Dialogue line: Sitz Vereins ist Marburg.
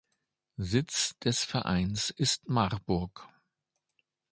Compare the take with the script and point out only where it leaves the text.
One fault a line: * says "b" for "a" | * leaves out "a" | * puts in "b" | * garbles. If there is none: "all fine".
* puts in "des"